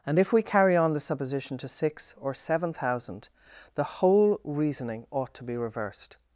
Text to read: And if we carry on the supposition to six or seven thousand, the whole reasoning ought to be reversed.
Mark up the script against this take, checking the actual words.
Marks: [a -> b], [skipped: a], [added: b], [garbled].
And if we carry on the supposition to six or seven thousand, the whole reasoning ought to be reversed.